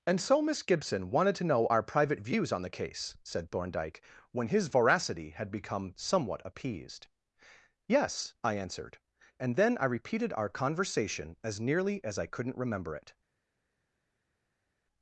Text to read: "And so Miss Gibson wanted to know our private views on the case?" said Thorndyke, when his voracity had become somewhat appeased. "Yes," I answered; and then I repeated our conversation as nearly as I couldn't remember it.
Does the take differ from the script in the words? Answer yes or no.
no